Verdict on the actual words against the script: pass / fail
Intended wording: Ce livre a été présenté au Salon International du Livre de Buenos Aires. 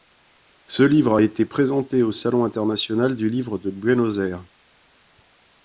pass